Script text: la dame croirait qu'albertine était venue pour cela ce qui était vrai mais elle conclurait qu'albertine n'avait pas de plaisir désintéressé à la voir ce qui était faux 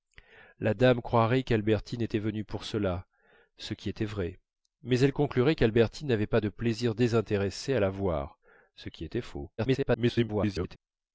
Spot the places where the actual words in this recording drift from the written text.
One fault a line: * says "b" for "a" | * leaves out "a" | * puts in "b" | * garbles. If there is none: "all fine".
* garbles